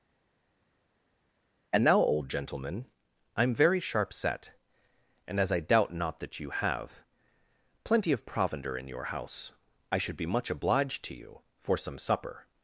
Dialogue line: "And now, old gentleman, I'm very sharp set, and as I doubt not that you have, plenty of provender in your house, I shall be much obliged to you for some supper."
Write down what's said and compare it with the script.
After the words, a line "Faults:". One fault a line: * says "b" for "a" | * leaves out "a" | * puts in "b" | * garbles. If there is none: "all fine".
"And now, old gentleman, I'm very sharp set, and as I doubt not that you have, plenty of provender in your house, I should be much obliged to you for some supper."
Faults:
* says "should" for "shall"